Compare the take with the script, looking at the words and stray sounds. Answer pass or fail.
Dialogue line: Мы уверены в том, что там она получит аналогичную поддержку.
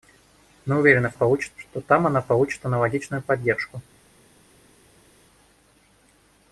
fail